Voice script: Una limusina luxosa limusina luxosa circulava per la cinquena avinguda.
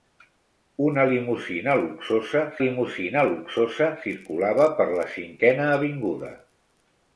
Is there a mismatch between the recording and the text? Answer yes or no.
no